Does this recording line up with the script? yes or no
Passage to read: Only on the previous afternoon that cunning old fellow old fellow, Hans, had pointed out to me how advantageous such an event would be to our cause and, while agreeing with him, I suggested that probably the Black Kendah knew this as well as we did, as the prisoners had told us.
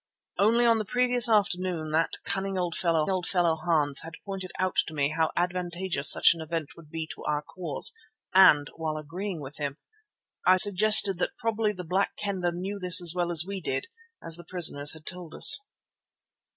yes